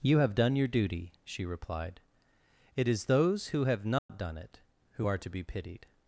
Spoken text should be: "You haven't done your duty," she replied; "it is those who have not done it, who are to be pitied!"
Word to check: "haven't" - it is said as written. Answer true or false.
false